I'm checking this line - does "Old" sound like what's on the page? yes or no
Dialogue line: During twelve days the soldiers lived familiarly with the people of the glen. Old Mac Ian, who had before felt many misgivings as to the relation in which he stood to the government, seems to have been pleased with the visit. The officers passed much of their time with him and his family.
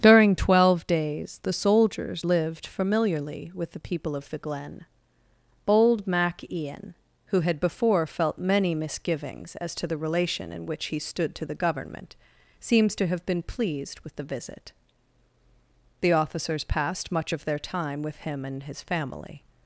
no